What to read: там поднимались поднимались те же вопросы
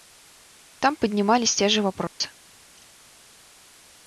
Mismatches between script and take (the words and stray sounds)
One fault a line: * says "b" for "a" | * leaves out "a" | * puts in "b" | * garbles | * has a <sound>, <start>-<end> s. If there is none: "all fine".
* leaves out "поднимались"
* has a dropout, 2.1-2.2 s